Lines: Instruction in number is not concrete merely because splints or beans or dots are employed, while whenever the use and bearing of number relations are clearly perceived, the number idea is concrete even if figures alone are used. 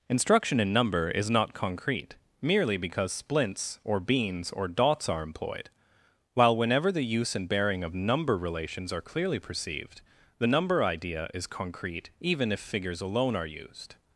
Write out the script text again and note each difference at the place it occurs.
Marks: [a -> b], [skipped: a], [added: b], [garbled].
Instruction in number is not concrete merely because splints or beans or dots are employed, while whenever the use and bearing of number relations are clearly perceived, the number idea is concrete even if figures alone are used.